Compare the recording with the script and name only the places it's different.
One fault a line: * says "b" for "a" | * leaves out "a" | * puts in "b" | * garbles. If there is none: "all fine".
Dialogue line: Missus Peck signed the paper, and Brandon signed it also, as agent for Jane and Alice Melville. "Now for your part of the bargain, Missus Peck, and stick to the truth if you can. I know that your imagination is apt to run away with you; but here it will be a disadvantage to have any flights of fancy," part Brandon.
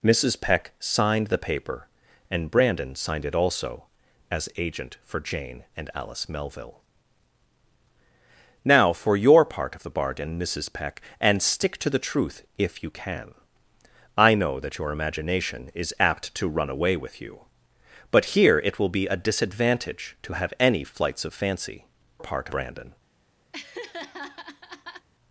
all fine